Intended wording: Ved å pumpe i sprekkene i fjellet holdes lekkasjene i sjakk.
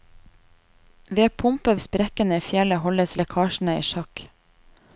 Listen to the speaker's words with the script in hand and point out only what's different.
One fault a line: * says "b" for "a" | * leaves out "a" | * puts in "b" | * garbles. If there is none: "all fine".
all fine